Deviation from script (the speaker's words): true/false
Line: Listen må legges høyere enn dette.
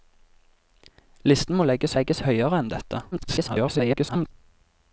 true